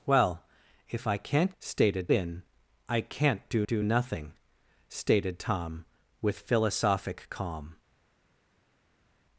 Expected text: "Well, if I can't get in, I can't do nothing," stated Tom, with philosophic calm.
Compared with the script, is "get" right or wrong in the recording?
wrong